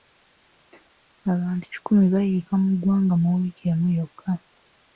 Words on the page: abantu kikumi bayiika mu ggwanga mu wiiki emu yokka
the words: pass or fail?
pass